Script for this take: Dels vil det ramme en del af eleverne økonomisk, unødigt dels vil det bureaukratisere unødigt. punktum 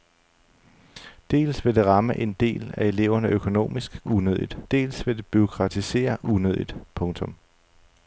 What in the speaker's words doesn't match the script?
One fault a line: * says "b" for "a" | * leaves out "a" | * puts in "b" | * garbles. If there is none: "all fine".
all fine